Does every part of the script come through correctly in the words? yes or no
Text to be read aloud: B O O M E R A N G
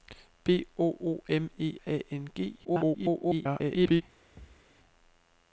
no